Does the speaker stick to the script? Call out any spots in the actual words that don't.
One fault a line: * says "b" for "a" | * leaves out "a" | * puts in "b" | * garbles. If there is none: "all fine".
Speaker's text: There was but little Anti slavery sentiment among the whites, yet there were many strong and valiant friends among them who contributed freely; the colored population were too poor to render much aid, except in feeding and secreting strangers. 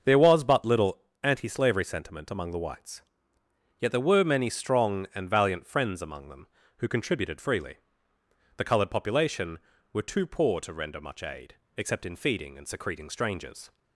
all fine